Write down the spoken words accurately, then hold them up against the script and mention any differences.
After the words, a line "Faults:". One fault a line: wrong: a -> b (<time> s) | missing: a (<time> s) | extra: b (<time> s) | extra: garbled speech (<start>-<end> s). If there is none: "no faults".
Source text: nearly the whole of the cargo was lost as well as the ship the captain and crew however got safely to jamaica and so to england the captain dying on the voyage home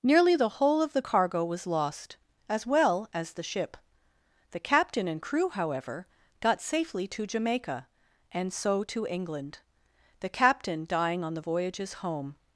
nearly the whole of the cargo was lost as well as the ship the captain and crew however got safely to jamaica and so to england the captain dying on the voyages home
Faults:
wrong: voyage -> voyages (11.4 s)